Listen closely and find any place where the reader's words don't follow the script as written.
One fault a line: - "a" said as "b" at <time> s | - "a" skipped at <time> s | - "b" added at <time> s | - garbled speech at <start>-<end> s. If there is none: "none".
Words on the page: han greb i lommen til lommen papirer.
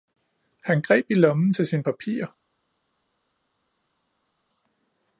- "lommen" said as "sine" at 1.7 s